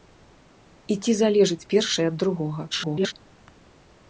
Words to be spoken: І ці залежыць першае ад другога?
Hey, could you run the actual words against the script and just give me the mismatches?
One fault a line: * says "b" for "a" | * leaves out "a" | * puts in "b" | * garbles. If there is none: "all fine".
* garbles